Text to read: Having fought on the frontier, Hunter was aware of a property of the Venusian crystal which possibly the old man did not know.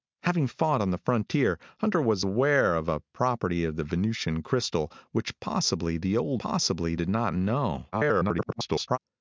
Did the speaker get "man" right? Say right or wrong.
wrong